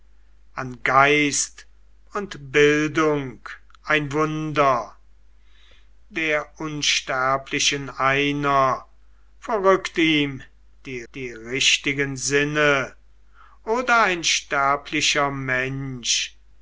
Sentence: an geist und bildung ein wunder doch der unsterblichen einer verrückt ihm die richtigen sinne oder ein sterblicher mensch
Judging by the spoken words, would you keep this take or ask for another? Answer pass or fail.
fail